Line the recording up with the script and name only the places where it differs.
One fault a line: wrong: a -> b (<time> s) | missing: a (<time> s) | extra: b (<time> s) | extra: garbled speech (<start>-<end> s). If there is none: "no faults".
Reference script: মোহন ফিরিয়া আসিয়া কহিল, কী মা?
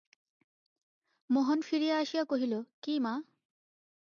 no faults